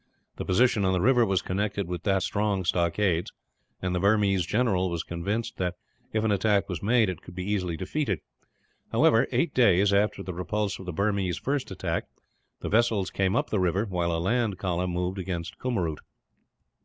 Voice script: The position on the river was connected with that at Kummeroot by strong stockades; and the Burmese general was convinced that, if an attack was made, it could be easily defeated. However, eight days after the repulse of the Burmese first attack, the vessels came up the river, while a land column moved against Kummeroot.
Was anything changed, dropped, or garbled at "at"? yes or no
yes